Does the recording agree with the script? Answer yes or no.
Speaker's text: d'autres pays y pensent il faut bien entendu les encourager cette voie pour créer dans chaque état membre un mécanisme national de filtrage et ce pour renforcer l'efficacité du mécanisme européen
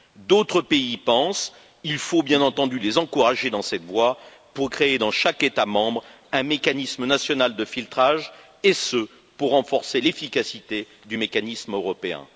no